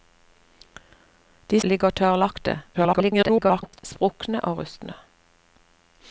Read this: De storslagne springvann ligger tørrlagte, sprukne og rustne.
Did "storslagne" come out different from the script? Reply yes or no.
yes